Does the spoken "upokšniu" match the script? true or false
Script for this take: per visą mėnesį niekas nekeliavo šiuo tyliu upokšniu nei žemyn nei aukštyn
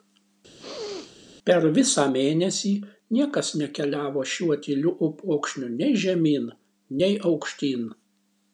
true